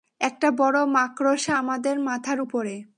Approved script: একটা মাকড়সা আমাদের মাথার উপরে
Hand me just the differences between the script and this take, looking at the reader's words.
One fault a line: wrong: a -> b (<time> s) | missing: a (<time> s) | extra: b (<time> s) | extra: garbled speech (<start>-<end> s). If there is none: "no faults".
extra: বড় (0.5 s)